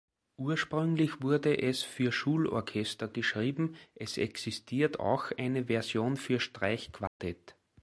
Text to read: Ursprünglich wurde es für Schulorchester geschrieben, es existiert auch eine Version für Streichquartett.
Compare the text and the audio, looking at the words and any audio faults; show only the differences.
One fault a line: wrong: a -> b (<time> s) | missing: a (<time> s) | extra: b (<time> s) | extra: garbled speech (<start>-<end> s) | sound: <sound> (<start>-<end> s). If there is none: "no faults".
sound: dropout (7.1-7.2 s)